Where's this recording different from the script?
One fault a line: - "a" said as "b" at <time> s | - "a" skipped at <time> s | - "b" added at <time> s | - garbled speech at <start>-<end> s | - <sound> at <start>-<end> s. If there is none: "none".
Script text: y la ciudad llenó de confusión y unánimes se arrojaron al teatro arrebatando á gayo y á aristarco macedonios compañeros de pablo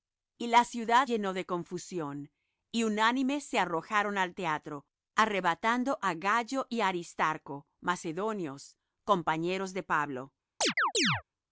- chirp at 10.6-11.2 s